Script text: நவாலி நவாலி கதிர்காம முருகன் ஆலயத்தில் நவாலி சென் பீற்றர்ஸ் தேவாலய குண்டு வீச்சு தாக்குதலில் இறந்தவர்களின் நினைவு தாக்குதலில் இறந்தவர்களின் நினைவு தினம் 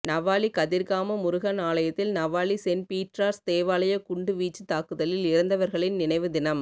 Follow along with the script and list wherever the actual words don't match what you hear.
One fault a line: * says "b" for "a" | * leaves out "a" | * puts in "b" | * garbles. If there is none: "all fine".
* leaves out "நவாலி"
* leaves out "தாக்குதலில் இறந்தவர்களின் நினைவு"